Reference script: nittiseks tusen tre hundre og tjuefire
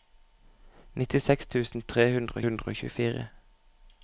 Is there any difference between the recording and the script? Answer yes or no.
yes